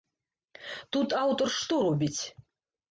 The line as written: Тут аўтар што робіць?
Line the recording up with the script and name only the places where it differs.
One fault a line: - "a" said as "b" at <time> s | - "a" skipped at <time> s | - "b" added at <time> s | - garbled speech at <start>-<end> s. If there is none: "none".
none